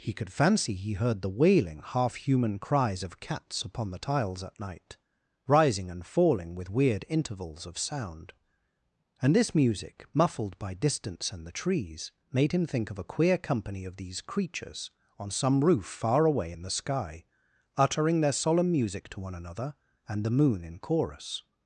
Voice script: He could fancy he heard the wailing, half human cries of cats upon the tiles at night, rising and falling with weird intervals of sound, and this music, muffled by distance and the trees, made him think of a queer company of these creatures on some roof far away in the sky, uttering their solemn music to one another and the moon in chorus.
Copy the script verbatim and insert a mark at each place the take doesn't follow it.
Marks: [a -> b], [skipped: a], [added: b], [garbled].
He could fancy he heard the wailing, half human cries of cats upon the tiles at night, rising and falling with weird intervals of sound, and this music, muffled by distance and the trees, made him think of a queer company of these creatures on some roof far away in the sky, uttering their solemn music to one another and the moon in chorus.